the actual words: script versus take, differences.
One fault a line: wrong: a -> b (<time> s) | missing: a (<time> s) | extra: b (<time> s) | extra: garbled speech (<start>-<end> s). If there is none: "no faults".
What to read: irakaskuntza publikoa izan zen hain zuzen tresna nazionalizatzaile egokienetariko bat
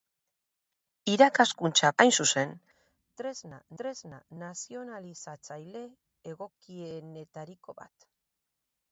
missing: publikoa izan zen (1.9 s)
extra: tresna (3.8 s)